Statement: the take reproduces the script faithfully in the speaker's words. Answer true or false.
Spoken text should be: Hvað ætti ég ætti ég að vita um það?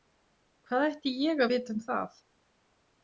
false